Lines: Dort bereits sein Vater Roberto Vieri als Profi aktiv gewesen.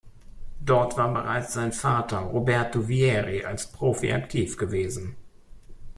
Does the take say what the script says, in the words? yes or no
no